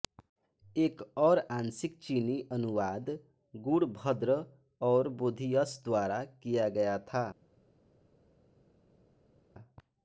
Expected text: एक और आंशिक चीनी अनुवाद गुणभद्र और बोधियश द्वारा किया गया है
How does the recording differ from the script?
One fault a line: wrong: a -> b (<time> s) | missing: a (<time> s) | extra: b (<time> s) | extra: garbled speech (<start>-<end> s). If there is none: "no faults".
wrong: है -> था (7.1 s)